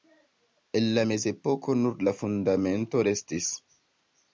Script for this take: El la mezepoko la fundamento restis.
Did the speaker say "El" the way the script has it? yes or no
yes